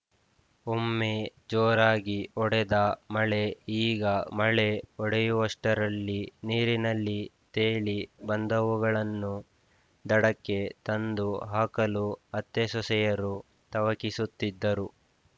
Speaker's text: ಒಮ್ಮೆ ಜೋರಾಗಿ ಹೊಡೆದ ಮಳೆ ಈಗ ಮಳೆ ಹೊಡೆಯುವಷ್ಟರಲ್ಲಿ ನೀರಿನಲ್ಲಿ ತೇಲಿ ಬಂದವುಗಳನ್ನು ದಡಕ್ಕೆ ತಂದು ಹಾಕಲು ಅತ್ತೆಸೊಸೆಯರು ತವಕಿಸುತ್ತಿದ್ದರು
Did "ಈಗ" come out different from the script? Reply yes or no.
no